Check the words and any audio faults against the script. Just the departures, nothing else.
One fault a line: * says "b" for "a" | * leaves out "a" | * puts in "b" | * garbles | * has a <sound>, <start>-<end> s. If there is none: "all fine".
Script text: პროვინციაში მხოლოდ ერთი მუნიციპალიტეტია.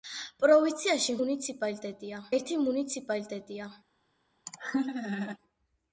* says "მუნიციპალიტეტია" for "მხოლოდ"
* has a laugh, 4.5-5.4 s